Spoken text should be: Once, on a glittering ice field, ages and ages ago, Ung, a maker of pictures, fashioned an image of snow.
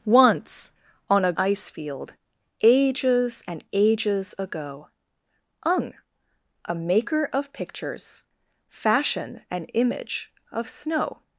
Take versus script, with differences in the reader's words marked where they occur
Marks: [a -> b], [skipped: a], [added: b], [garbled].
Once, on a [skipped: glittering] ice field, ages and ages ago, Ung, a maker of pictures, fashioned an image of snow.